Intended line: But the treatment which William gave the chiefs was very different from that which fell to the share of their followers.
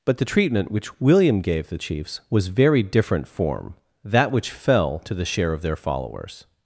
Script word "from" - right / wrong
wrong